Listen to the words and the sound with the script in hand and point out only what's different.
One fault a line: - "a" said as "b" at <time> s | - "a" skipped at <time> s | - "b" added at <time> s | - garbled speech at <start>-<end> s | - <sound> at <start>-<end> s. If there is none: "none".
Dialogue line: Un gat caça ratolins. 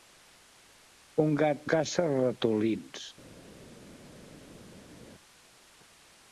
none